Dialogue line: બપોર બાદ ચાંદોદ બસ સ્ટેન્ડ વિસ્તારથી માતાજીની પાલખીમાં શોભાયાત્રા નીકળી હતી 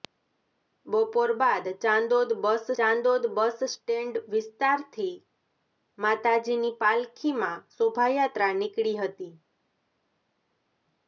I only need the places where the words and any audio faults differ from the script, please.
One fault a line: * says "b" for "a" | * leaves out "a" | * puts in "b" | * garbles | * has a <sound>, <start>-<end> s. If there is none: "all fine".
* puts in "ચાંદોદ બસ"